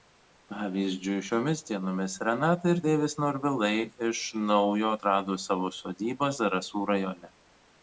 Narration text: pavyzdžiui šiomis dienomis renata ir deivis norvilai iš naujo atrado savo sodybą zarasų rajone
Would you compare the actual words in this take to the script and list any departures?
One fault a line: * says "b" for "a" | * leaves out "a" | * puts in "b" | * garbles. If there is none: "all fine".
all fine